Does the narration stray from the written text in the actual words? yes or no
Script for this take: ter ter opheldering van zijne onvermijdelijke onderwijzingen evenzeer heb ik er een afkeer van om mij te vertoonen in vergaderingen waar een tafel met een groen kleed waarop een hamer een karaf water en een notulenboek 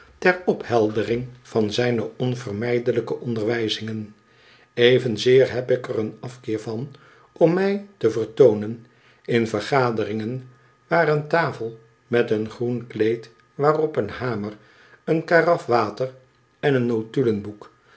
yes